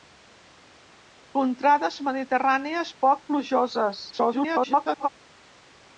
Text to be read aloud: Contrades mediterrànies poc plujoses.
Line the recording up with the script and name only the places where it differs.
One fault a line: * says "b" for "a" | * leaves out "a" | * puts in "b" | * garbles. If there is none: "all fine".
* garbles